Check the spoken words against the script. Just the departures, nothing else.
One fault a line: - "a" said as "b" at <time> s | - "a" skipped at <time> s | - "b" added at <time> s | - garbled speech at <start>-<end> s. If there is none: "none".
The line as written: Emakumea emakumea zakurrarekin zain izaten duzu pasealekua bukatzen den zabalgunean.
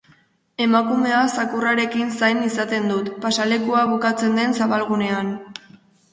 - "emakumea" skipped at 1.2 s
- "duzu" said as "dut" at 2.9 s